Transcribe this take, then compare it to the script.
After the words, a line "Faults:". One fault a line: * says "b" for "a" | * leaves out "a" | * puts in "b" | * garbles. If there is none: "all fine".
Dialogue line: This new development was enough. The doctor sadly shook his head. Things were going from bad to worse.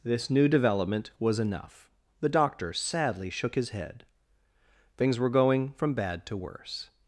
This new development was enough. The doctor sadly shook his head. Things were going from bad to worse.
Faults:
all fine